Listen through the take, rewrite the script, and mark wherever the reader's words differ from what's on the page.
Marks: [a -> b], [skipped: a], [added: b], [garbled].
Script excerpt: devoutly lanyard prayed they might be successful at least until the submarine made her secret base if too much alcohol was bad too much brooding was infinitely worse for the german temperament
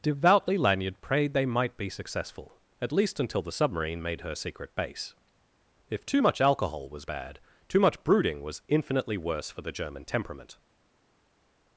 devoutly lanyard prayed they might be successful at least until the submarine made her secret base if too much alcohol was bad too much brooding was infinitely worse for the german temperament